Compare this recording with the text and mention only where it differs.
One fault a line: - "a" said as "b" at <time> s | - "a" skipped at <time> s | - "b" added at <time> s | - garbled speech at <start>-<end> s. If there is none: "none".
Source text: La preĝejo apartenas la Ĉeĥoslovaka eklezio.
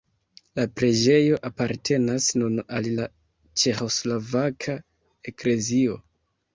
- "nun al" added at 2.4 s